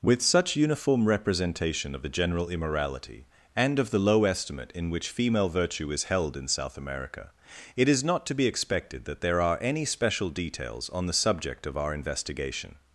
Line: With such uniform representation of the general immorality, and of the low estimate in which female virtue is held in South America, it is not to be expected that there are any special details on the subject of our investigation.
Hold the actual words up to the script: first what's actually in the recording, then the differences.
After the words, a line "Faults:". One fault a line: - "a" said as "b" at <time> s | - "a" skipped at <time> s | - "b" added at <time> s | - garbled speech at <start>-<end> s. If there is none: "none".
With such uniform representation of the general immorality, and of the low estimate in which female virtue is held in South America, it is not to be expected that there are any special details on the subject of our investigation.
Faults:
none